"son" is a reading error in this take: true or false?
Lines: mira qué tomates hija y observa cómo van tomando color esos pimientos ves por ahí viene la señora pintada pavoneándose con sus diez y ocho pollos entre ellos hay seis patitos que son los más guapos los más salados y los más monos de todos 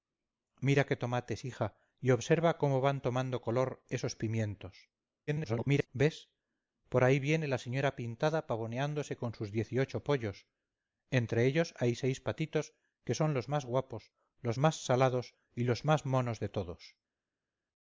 false